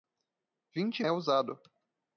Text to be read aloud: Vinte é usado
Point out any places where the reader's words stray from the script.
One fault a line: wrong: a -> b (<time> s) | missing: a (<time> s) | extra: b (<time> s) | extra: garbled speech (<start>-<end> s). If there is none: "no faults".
no faults